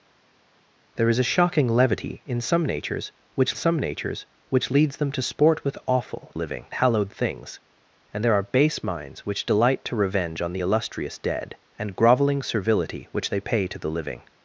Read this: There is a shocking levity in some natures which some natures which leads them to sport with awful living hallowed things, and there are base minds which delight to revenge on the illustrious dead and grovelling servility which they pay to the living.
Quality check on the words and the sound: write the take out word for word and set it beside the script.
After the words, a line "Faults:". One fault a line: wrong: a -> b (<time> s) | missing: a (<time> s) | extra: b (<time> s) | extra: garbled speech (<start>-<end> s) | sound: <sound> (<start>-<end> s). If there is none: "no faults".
There is a shocking levity in some natures which some natures which leads them to sport with awful living hallowed things, and there are base minds which delight to revenge on the illustrious dead and grovelling servility which they pay to the living.
Faults:
no faults